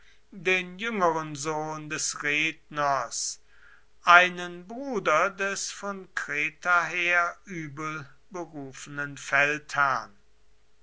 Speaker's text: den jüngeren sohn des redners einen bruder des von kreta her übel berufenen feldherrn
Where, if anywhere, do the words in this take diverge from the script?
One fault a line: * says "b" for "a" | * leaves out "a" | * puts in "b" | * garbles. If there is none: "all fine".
all fine